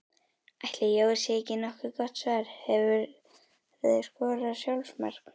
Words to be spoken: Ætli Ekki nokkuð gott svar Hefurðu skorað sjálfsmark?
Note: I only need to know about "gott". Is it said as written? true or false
true